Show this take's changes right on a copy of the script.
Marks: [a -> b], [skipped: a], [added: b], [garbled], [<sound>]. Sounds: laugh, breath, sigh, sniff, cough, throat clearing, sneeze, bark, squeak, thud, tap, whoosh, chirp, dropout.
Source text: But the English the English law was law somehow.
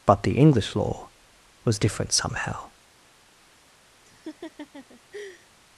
But the English [skipped: the English] law was [law -> different] somehow. [laugh]